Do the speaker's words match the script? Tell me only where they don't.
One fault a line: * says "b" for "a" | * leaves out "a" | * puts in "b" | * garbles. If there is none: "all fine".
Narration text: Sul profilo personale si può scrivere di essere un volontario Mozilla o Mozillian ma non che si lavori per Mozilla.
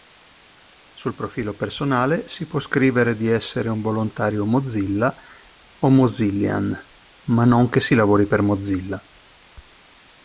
all fine